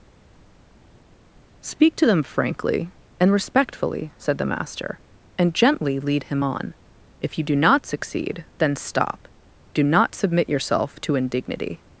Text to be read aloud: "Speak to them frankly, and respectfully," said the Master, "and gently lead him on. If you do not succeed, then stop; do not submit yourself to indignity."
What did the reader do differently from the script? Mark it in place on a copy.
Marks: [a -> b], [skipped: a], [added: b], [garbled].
"Speak to them frankly, and respectfully," said the Master, "and gently lead him on. If you do not succeed, then stop; do not submit yourself to indignity."